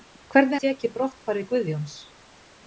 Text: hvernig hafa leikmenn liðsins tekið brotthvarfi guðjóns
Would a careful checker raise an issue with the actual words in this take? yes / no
yes